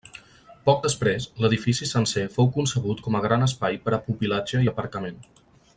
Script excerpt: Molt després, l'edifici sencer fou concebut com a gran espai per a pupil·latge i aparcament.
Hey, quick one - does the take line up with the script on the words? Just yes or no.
no